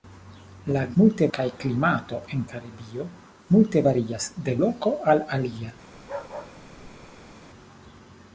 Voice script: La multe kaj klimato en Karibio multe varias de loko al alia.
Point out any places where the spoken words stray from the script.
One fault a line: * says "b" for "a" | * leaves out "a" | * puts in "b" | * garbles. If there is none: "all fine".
all fine